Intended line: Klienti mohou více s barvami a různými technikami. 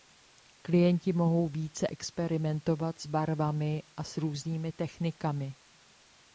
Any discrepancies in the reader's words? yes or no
yes